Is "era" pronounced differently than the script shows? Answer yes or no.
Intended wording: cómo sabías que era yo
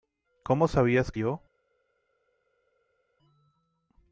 yes